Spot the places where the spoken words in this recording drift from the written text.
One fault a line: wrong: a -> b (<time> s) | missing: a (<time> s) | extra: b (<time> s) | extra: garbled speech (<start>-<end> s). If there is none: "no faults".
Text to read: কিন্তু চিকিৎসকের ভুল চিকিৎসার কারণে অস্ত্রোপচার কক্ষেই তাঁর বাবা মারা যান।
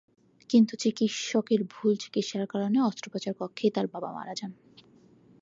no faults